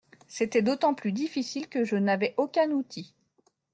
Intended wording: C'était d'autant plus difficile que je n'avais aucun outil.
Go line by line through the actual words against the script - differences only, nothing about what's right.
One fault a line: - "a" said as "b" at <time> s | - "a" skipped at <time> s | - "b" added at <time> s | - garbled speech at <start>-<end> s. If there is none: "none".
none